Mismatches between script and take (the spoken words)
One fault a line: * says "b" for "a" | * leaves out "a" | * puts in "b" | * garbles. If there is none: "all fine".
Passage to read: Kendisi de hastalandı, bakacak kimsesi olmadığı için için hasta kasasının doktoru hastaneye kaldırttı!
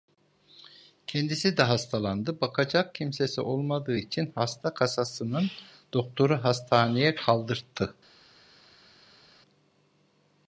* leaves out "için"